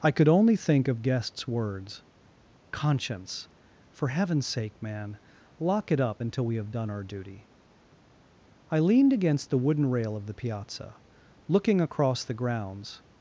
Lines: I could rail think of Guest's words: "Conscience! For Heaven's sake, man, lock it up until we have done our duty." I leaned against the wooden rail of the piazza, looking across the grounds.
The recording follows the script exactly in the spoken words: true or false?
false